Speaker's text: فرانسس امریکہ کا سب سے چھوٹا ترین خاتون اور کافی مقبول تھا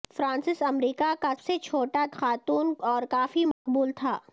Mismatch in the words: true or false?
true